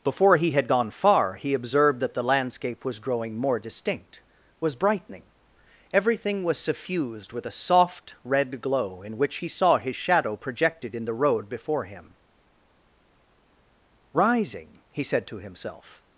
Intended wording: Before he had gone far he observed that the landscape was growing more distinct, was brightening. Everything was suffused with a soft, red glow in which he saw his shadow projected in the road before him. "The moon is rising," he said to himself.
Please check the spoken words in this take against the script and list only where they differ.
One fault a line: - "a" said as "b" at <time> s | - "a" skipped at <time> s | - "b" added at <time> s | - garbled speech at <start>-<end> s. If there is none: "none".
- "The moon is" skipped at 12.1 s